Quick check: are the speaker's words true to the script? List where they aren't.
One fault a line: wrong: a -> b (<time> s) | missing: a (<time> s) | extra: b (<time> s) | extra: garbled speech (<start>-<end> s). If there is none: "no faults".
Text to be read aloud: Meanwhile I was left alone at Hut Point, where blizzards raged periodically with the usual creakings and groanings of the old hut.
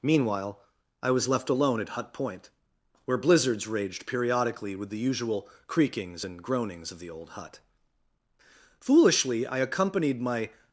extra: Foolishly I accompanied my (8.8 s)